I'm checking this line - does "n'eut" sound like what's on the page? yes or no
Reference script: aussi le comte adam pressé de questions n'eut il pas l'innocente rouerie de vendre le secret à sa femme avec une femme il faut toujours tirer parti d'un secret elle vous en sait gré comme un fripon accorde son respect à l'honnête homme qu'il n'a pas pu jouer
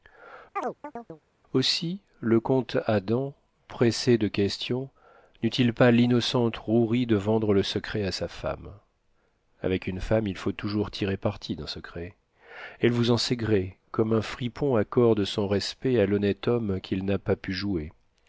yes